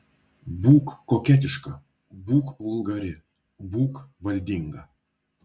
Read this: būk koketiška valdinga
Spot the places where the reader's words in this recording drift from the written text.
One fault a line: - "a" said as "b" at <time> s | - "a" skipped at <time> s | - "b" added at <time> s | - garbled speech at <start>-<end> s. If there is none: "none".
- "būk vulgari būk" added at 2.3 s